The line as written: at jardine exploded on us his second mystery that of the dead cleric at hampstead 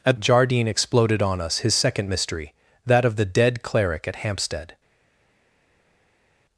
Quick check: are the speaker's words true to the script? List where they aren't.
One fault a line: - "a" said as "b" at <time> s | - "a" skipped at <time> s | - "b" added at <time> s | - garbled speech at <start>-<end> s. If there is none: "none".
none